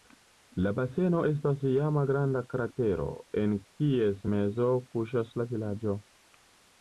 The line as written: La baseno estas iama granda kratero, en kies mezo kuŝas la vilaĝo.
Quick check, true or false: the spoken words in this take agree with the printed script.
true